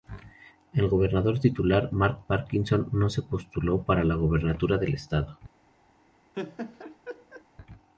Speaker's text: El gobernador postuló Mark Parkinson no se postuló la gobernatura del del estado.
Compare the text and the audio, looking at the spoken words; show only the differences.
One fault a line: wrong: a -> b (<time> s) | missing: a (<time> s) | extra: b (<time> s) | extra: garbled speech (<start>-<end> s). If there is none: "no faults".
wrong: postuló -> titular (1.4 s)
extra: para (3.8 s)
missing: del (4.9 s)